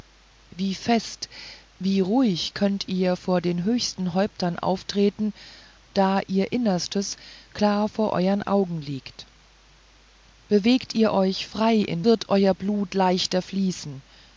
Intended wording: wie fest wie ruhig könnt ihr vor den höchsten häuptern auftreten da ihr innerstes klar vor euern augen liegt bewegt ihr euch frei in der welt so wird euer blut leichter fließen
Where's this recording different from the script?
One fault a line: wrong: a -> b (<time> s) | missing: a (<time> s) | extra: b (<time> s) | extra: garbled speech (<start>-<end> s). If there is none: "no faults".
missing: der welt so (12.0 s)